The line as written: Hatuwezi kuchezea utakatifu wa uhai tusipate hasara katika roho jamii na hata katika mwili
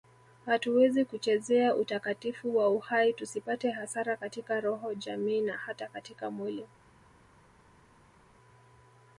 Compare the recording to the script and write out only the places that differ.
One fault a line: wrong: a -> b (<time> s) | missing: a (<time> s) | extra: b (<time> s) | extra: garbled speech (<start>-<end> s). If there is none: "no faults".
no faults